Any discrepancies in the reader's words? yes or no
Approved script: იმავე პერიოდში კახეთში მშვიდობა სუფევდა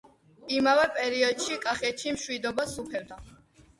no